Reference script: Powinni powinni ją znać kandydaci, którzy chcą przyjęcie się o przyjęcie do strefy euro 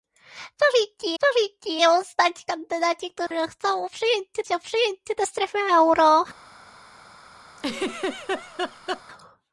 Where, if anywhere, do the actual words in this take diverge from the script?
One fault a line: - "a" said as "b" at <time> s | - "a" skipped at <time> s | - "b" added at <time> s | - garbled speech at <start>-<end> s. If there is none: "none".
none